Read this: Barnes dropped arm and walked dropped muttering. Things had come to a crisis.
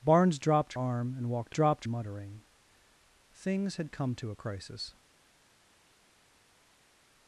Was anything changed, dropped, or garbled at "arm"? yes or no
no